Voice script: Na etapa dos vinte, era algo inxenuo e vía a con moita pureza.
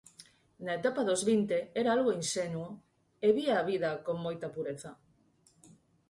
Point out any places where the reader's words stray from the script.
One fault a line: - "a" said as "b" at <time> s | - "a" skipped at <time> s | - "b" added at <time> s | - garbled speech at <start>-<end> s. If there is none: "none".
- "vida" added at 3.7 s